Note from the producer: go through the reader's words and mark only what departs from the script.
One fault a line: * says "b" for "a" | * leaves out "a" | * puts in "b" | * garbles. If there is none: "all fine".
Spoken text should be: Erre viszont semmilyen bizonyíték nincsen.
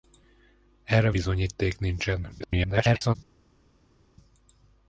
* leaves out "viszont semmilyen"
* garbles